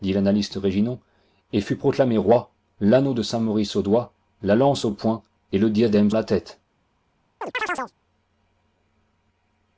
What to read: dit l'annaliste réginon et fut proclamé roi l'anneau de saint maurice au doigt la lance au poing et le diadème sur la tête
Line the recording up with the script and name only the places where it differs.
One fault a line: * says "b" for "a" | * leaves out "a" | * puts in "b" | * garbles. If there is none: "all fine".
* leaves out "sur"